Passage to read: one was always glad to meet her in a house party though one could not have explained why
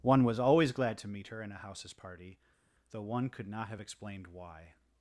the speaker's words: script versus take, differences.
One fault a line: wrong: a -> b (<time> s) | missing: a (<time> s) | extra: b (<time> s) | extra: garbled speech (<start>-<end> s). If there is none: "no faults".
wrong: house -> houses (1.6 s)